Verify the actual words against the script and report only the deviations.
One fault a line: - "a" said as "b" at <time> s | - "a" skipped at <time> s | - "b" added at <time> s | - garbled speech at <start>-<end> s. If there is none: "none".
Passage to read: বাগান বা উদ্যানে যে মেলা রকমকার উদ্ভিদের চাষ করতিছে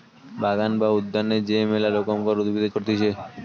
- "চাষ" skipped at 2.7 s